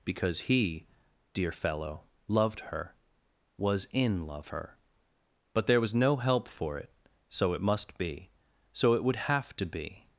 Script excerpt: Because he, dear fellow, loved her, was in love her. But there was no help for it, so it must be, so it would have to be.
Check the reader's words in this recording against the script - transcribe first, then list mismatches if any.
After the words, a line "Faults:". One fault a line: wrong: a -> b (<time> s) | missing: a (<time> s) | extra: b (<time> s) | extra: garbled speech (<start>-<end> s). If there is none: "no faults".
Because he, dear fellow, loved her, was in love her. But there was no help for it, so it must be, so it would have to be.
Faults:
no faults